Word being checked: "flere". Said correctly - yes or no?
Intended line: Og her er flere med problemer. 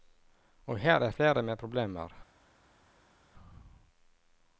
yes